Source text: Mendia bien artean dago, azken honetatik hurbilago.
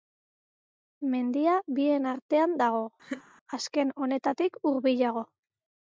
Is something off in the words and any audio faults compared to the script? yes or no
yes